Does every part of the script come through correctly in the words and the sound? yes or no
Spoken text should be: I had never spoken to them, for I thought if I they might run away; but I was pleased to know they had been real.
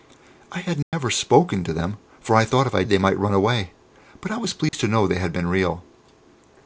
no